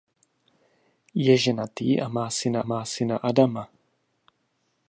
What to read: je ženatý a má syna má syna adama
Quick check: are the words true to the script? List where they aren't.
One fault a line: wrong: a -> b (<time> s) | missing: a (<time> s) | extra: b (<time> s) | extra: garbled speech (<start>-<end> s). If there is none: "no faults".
no faults